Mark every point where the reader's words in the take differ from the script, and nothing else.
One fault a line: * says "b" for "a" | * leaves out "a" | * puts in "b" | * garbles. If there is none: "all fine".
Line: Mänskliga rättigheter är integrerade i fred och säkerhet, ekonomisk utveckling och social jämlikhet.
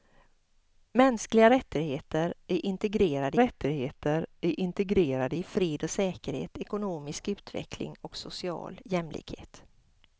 * puts in "rättigheter är integrerade"